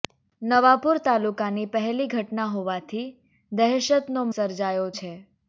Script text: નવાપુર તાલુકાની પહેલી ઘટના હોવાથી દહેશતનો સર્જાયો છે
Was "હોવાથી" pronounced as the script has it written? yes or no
yes